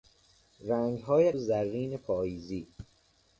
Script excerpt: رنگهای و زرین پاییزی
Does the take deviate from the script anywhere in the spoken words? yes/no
no